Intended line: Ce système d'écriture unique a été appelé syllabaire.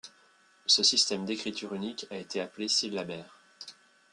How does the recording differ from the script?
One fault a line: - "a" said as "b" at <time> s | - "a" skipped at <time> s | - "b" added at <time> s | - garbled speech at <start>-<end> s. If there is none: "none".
none